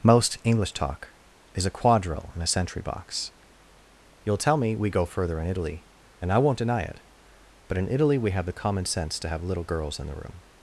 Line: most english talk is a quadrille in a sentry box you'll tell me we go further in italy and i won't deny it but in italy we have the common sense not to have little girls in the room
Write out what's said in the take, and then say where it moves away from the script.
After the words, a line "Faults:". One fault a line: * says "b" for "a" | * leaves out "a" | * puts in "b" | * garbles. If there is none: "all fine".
most english talk is a quadrille in a sentry box you'll tell me we go further in italy and i won't deny it but in italy we have the common sense to have little girls in the room
Faults:
* leaves out "not"